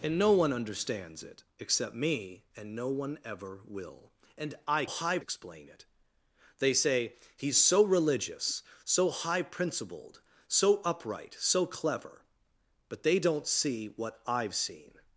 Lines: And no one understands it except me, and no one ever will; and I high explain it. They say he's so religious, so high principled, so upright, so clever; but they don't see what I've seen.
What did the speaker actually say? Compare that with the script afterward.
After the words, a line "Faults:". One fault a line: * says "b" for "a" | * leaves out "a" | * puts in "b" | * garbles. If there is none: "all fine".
And no one understands it except me, and no one ever will; and I high explain it. They say he's so religious, so high principled, so upright, so clever; but they don't see what I've seen.
Faults:
all fine